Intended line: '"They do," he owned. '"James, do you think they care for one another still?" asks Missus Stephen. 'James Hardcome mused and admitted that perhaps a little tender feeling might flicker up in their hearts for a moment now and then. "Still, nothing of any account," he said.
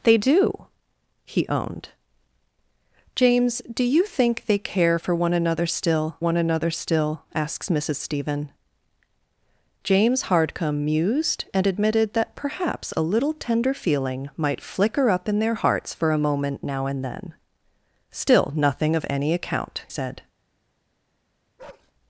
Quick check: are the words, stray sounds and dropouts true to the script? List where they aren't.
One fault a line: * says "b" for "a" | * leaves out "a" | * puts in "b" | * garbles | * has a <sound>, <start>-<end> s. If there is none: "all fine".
* puts in "one another still"
* leaves out "he"
* has a bark, 21.6-21.9 s